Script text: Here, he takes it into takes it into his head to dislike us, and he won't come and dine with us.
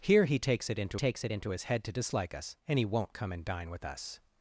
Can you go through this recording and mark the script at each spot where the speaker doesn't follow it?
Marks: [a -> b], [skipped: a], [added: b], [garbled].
Here, he takes it into takes it into his head to dislike us, and he won't come and dine with us.